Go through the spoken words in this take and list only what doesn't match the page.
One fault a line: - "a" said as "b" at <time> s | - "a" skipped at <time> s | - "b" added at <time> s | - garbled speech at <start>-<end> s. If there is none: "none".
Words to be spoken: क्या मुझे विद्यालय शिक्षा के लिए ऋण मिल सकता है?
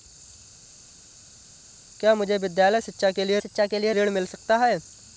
- "शिक्षा के लिए" added at 3.4 s